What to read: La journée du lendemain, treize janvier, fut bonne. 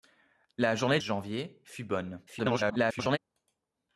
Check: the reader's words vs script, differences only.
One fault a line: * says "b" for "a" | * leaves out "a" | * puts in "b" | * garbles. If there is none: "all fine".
* leaves out "du lendemain treize"
* garbles